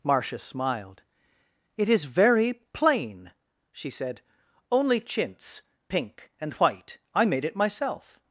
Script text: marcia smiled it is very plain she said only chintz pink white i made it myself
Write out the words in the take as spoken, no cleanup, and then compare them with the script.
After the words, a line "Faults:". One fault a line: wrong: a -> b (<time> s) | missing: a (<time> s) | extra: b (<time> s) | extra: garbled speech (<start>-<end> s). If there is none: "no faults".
marcia smiled it is very plain she said only chintz pink and white i made it myself
Faults:
extra: and (6.4 s)